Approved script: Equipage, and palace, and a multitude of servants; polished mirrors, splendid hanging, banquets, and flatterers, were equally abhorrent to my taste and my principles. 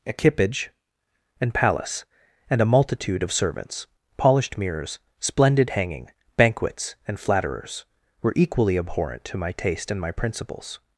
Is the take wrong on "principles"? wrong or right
right